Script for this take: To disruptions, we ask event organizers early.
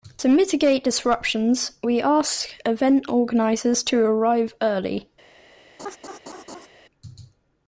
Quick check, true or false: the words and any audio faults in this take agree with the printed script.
false